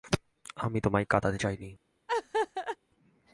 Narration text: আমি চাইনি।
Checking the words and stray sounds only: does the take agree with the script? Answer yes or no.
no